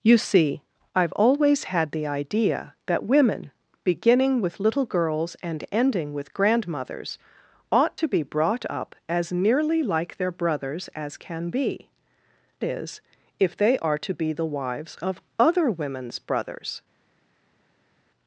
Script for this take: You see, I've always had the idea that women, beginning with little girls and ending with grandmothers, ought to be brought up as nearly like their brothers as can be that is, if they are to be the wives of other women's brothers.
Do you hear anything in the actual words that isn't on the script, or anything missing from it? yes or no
yes